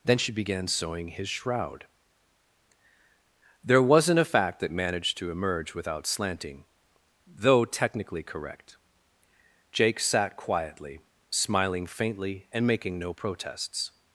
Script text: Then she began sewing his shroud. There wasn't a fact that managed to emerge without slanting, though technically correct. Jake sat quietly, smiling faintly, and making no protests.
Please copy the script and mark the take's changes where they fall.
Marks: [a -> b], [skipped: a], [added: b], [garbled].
Then she began sewing his shroud. There wasn't a fact that managed to emerge without slanting, though technically correct. Jake sat quietly, smiling faintly, and making no protests.